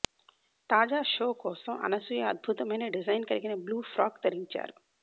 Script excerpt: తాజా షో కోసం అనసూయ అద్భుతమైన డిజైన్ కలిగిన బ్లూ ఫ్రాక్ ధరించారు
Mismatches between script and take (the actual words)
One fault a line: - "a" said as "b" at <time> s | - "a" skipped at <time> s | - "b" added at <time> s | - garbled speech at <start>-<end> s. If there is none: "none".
none